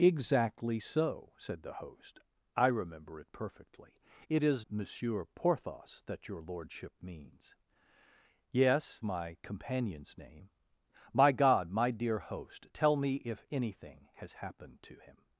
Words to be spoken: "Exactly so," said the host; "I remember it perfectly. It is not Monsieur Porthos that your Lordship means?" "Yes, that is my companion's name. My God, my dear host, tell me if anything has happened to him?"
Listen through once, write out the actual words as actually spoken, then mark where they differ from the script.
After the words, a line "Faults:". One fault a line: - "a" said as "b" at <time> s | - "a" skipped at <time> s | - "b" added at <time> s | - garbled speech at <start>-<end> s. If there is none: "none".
"Exactly so," said the host; "I remember it perfectly. It is Monsieur Porthos that your Lordship means?" "Yes, my companion's name. My God, my dear host, tell me if anything has happened to him?"
Faults:
- "not" skipped at 4.7 s
- "that is" skipped at 9.0 s